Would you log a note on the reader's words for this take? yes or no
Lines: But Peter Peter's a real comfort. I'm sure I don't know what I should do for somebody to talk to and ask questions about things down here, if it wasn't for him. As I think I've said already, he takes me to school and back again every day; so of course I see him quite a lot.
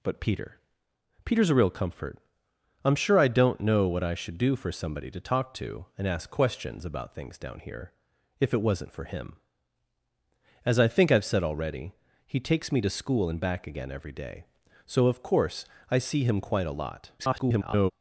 yes